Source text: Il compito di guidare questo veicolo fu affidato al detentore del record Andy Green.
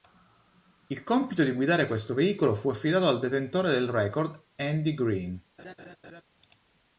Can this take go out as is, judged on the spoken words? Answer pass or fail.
pass